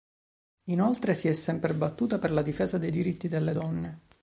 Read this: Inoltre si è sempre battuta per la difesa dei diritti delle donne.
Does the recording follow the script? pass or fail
pass